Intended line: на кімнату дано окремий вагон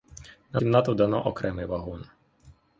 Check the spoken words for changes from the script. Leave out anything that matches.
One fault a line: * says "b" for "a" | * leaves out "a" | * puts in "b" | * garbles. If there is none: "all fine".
all fine